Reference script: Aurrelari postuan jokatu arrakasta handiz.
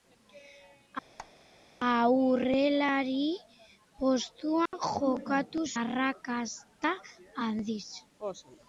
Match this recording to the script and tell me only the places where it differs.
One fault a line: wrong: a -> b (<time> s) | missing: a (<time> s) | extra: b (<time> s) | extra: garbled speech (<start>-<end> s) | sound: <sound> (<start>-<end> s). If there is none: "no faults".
sound: squeak (1.2-1.3 s)
sound: dropout (4.7-4.7 s)